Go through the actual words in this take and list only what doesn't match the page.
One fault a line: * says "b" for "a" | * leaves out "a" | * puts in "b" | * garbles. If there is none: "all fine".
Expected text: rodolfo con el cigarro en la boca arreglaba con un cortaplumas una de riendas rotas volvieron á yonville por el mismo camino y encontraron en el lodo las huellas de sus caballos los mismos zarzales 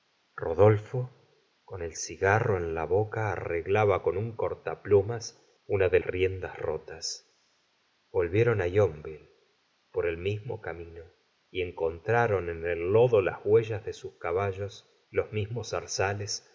all fine